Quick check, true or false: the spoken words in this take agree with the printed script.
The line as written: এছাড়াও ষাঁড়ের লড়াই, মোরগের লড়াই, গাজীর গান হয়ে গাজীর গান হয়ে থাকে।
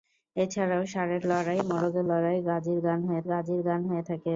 true